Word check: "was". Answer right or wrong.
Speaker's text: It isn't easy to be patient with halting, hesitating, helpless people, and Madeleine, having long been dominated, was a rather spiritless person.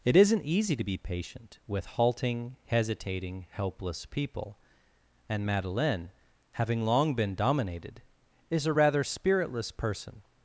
wrong